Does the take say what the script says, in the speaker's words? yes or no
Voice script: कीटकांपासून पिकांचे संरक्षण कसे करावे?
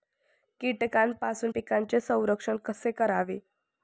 yes